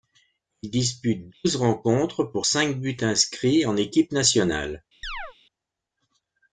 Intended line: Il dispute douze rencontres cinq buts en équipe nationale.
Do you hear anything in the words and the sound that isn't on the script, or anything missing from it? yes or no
yes